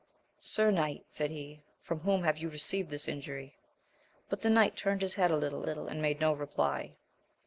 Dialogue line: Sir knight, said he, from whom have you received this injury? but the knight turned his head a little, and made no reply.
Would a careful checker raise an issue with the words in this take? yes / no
yes